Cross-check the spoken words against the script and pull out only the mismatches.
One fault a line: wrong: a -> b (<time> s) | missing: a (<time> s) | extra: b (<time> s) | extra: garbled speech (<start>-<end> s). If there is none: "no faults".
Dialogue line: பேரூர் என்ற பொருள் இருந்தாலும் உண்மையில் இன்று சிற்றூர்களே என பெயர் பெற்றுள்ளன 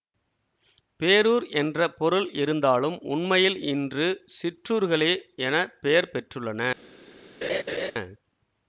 no faults